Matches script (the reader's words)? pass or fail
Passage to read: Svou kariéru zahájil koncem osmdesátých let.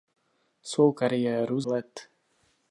fail